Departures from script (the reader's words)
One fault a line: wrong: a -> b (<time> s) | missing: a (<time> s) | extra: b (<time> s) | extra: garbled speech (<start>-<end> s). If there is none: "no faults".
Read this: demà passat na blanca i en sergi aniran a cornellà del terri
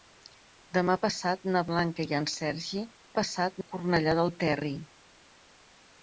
wrong: aniran -> passat (3.2 s)